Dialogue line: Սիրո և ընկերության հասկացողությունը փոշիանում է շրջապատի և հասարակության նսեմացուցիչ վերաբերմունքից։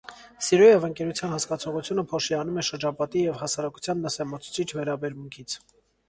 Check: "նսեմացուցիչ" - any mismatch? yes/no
no